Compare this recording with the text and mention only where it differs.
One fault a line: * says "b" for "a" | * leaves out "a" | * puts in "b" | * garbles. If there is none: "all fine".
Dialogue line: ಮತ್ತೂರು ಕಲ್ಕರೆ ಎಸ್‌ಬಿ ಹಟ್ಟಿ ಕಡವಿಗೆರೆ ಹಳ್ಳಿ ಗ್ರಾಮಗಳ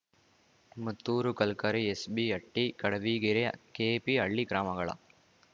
* puts in "ಕೆಪಿ"